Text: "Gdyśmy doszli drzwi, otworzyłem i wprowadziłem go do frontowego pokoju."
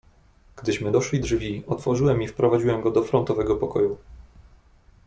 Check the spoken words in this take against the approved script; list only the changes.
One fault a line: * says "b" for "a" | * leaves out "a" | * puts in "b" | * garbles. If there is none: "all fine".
all fine